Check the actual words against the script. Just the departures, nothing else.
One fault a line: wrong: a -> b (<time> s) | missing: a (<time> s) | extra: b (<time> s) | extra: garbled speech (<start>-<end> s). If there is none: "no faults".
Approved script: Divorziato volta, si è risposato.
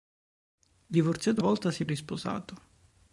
no faults